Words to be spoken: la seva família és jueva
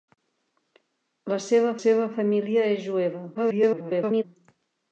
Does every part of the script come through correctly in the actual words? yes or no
no